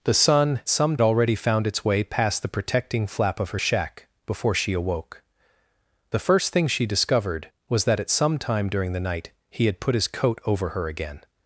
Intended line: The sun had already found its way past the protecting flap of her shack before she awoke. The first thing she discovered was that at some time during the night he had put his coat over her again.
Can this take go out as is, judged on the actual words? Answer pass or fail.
fail